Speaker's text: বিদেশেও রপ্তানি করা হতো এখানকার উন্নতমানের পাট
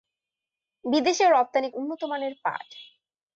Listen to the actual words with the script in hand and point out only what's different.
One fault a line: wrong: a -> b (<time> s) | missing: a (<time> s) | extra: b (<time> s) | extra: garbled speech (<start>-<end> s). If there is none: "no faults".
missing: করা হতো এখানকার (1.7 s)